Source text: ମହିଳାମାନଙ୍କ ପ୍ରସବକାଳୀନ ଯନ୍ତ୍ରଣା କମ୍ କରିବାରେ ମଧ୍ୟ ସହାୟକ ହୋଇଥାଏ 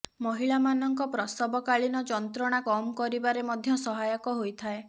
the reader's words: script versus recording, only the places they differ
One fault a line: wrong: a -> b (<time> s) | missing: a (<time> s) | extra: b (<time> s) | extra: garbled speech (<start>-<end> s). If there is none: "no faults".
no faults